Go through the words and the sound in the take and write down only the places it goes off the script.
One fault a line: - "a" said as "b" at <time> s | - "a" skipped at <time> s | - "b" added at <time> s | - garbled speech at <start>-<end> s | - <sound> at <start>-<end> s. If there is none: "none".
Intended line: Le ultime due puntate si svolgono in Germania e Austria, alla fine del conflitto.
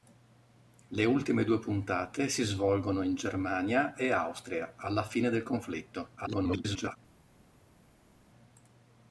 - garbled speech at 6.2-7.0 s